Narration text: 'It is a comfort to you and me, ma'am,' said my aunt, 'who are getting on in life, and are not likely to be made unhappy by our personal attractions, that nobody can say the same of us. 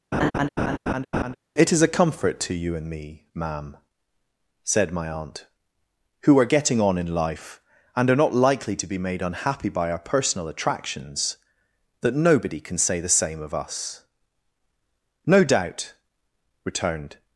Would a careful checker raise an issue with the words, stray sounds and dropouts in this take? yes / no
yes